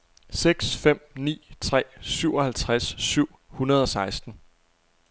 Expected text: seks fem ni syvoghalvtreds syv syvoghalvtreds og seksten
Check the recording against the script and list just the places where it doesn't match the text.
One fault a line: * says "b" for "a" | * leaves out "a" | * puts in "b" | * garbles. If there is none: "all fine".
* puts in "tre"
* says "hundrede" for "syvoghalvtreds"